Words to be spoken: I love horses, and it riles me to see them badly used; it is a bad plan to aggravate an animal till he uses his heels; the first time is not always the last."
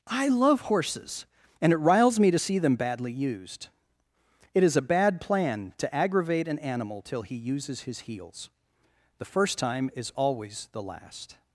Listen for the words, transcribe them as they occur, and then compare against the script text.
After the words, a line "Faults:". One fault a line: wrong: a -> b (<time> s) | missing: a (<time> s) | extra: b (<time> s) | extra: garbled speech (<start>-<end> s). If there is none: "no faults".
I love horses, and it riles me to see them badly used; it is a bad plan to aggravate an animal till he uses his heels; the first time is always the last."
Faults:
missing: not (10.1 s)